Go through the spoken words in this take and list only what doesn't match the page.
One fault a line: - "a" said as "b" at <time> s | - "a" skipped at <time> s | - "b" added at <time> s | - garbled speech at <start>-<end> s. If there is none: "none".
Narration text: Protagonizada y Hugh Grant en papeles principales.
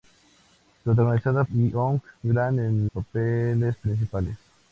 none